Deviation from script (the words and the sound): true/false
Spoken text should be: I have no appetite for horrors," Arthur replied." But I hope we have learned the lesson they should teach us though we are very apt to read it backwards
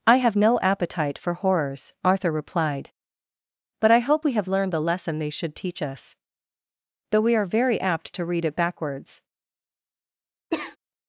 true